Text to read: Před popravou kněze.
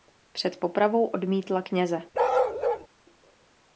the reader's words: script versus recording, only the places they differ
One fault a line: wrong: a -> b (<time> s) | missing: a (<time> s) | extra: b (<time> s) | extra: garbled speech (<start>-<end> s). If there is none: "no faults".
extra: odmítla (1.1 s)